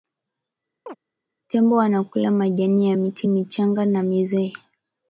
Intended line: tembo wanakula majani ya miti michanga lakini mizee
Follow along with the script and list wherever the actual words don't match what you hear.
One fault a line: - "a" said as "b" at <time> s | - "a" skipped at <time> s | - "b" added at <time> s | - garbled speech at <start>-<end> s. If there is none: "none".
- "lakini" said as "na" at 3.8 s